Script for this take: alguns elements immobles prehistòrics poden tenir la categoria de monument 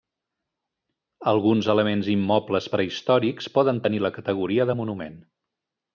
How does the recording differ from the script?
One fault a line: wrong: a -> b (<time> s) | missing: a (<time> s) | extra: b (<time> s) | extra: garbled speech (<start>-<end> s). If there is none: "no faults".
no faults